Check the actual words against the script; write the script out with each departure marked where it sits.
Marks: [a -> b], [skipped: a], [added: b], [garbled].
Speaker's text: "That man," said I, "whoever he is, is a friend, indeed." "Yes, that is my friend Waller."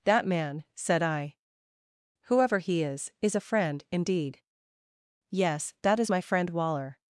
"That man," said I, "whoever he is, is a friend, indeed." "Yes, that is my friend Waller."